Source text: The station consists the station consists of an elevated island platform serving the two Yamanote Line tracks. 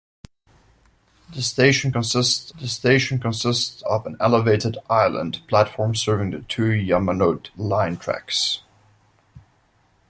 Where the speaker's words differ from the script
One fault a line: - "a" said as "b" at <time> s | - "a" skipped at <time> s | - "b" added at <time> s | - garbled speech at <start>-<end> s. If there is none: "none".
none